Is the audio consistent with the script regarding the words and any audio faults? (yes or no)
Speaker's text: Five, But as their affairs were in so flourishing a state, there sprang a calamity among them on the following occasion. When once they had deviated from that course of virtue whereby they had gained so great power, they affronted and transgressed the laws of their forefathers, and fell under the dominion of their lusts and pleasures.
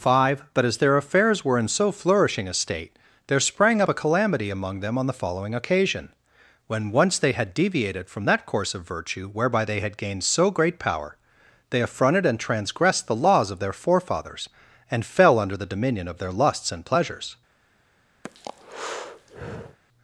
no